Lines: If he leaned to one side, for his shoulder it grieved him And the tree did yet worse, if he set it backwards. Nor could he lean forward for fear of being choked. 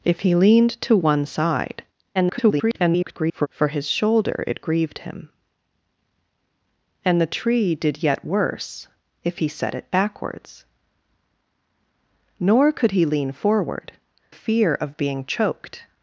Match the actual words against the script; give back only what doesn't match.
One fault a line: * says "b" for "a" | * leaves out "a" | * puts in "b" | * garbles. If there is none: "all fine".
* garbles
* leaves out "for"